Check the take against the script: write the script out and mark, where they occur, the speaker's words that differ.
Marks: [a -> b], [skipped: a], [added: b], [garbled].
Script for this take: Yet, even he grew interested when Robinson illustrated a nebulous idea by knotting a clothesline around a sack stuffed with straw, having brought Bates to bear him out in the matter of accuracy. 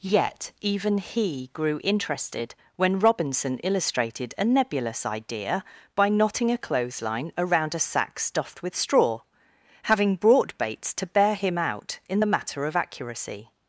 Yet, even he grew interested when Robinson illustrated a nebulous idea by knotting a clothesline around a sack stuffed with straw, having brought Bates to bear him out in the matter of accuracy.